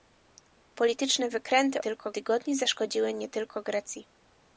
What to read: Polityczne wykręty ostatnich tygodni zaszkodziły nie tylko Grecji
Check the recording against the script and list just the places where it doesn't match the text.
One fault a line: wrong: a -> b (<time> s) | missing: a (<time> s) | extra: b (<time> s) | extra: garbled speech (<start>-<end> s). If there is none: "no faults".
wrong: ostatnich -> tylko (1.8 s)